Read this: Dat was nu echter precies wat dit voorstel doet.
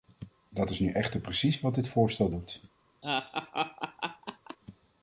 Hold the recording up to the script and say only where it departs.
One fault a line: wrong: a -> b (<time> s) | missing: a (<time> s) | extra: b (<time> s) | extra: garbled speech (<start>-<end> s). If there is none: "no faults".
wrong: was -> is (0.7 s)